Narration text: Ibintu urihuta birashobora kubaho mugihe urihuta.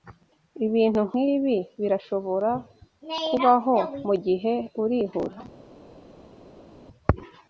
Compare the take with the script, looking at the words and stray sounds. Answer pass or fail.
fail